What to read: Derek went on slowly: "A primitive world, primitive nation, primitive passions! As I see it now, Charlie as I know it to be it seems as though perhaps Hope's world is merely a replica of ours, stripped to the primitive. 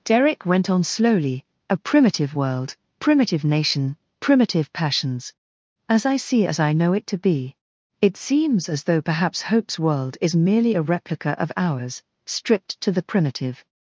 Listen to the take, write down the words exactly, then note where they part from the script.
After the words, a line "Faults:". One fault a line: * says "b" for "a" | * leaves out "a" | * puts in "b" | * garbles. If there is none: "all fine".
Derek went on slowly: "A primitive world, primitive nation, primitive passions! As I see as I know it to be it seems as though perhaps Hope's world is merely a replica of ours, stripped to the primitive.
Faults:
* leaves out "it now Charlie"